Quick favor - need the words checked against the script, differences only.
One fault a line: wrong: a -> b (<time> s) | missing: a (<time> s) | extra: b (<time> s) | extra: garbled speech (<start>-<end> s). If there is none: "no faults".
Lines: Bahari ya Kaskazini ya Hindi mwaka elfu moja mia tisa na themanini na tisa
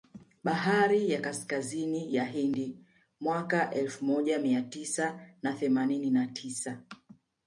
no faults